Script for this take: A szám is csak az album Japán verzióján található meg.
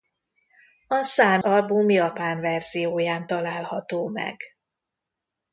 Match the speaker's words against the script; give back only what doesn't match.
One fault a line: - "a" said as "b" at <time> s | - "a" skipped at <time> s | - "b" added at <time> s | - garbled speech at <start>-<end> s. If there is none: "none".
- "is csak az" skipped at 1.4 s